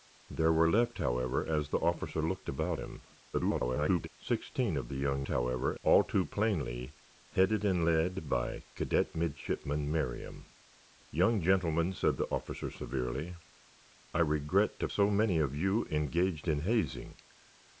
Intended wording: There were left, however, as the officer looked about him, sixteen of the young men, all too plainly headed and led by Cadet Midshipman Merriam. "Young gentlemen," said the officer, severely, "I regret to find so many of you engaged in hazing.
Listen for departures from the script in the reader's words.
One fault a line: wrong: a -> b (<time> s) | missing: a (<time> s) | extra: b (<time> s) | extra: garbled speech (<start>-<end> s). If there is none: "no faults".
extra: garbled speech (3.3-4.1 s)
wrong: men -> however (5.3 s)
missing: find (14.9 s)